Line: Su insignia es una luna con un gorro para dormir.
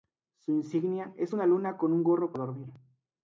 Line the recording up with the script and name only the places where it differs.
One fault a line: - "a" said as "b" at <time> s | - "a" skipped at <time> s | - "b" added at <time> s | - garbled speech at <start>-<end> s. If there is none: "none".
none